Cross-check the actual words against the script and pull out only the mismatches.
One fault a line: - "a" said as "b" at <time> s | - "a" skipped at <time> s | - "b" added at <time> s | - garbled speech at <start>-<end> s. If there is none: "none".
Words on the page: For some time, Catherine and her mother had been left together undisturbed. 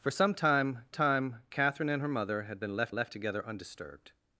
- "time" added at 0.9 s
- "left" added at 2.9 s